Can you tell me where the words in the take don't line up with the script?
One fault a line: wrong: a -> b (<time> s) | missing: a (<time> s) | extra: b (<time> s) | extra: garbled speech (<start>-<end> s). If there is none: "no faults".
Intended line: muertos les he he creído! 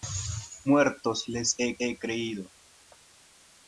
no faults